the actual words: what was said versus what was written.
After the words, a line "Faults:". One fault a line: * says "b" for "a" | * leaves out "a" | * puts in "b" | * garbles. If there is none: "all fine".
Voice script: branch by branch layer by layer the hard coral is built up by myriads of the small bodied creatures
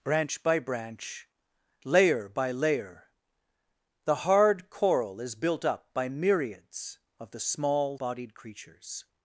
branch by branch layer by layer the hard coral is built up by myriads of the small bodied creatures
Faults:
all fine